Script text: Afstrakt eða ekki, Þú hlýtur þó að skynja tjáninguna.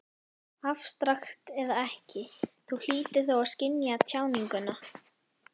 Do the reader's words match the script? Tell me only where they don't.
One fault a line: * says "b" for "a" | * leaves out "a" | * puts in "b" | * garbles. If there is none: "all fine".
all fine